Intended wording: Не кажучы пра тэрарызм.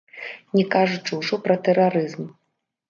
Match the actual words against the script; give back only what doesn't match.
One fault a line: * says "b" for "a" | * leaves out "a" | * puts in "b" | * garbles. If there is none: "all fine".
* puts in "ўжо"